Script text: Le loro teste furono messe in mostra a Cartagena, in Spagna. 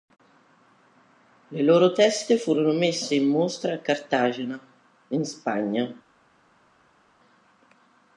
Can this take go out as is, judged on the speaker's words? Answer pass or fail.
pass